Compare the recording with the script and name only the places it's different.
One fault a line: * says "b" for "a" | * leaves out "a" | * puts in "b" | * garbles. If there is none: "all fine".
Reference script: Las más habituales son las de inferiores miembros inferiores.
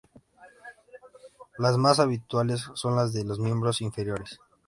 * says "los" for "inferiores"